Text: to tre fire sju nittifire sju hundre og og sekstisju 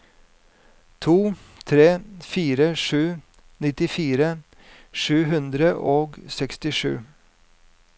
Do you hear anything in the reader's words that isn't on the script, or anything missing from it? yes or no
yes